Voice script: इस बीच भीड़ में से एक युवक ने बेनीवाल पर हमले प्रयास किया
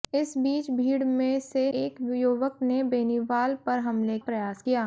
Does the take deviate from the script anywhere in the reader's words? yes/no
no